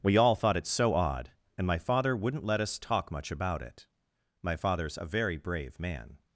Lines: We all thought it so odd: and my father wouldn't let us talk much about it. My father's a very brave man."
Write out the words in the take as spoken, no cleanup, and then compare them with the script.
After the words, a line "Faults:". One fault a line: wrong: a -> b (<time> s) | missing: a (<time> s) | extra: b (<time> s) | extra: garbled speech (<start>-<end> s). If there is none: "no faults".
We all thought it so odd: and my father wouldn't let us talk much about it. My father's a very brave man."
Faults:
no faults